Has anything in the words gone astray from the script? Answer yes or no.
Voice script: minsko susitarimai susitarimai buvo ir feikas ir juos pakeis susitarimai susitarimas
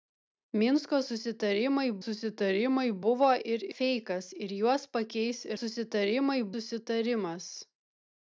no